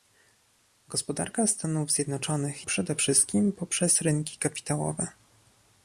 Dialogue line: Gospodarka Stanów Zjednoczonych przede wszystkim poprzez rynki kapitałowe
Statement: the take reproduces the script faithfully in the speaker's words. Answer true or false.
true